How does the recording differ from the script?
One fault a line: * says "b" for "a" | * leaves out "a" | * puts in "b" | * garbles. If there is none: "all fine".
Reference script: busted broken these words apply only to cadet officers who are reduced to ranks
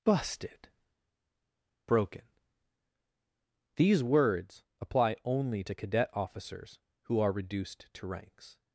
all fine